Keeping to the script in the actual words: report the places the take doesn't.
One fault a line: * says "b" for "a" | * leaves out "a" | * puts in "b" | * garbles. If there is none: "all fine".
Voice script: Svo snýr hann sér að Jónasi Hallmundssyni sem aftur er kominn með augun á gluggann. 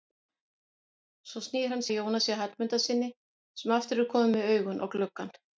* leaves out "sér"